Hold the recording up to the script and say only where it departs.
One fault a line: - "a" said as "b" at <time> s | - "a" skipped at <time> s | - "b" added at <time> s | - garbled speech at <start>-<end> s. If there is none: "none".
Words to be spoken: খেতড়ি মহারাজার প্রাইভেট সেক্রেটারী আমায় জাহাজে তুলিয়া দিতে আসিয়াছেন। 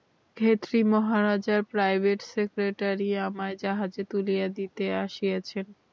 none